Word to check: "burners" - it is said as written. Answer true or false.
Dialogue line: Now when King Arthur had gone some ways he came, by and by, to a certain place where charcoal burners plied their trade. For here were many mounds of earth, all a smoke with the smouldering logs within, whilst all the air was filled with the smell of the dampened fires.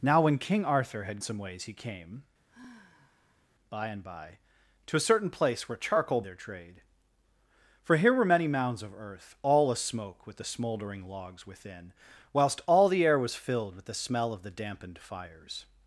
false